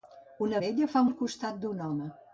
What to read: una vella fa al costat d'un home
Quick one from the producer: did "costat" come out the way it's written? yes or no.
yes